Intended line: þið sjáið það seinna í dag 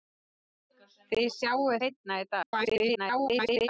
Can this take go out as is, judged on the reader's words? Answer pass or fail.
fail